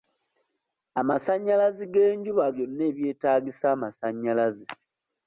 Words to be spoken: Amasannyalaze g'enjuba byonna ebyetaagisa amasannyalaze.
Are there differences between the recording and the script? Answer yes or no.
no